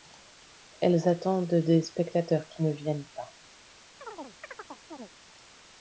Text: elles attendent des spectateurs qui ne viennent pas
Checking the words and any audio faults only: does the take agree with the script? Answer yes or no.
no